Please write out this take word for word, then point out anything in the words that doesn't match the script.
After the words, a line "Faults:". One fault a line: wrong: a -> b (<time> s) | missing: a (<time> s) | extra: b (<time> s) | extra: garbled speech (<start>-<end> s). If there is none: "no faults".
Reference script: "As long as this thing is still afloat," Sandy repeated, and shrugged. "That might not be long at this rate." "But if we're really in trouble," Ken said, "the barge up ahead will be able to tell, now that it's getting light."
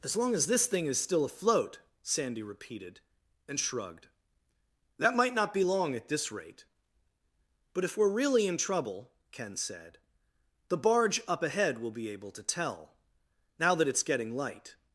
"As long as this thing is still afloat," Sandy repeated, and shrugged. "That might not be long at this rate." "But if we're really in trouble," Ken said, "the barge up ahead will be able to tell, now that it's getting light."
Faults:
no faults